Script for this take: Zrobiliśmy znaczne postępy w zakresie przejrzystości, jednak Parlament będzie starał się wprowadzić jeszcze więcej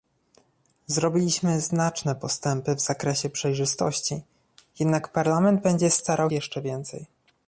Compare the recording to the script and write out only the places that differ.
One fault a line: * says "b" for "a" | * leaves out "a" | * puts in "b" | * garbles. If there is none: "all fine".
* leaves out "się wprowadzić"